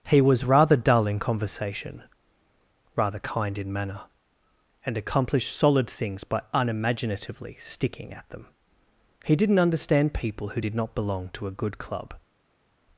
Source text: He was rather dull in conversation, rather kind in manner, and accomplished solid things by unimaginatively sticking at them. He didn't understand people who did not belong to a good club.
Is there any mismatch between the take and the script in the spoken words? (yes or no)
no